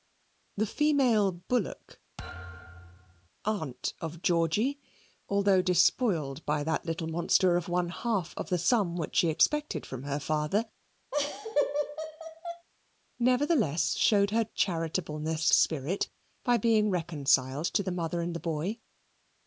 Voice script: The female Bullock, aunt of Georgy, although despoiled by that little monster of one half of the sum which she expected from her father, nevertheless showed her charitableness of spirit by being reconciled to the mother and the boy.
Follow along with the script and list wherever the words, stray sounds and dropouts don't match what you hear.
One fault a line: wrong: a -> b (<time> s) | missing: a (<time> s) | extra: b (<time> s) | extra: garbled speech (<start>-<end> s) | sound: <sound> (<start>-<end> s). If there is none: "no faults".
sound: thud (2.2-3.3 s)
sound: laugh (11.1-12.7 s)
missing: of (15.5 s)